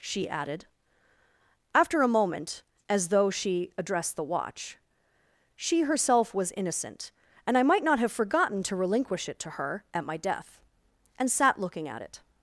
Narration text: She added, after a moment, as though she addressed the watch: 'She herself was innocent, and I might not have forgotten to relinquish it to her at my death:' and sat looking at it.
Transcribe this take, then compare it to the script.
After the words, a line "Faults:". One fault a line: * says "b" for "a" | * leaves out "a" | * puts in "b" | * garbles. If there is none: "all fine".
She added, after a moment, as though she addressed the watch: 'She herself was innocent, and I might not have forgotten to relinquish it to her at my death:' and sat looking at it.
Faults:
all fine